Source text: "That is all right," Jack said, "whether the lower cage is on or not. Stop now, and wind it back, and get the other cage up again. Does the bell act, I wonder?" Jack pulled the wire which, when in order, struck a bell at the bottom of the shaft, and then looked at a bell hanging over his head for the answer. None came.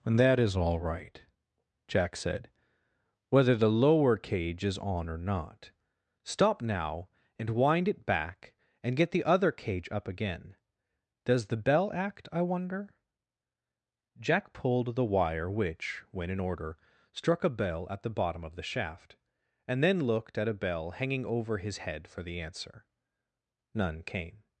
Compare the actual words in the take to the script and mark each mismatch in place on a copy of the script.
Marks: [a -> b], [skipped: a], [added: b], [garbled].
[added: and] "That is all right," Jack said, "whether the lower cage is on or not. Stop now, and wind it back, and get the other cage up again. Does the bell act, I wonder?" Jack pulled the wire which, when in order, struck a bell at the bottom of the shaft, and then looked at a bell hanging over his head for the answer. None came.